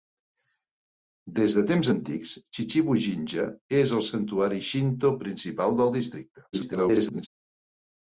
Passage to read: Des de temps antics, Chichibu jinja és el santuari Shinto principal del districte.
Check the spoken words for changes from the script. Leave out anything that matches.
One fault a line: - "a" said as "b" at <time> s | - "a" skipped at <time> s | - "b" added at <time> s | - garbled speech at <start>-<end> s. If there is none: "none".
- garbled speech at 6.5-7.3 s